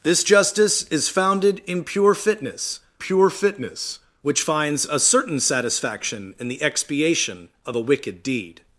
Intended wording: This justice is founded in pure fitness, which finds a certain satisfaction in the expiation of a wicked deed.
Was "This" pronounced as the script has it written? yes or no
yes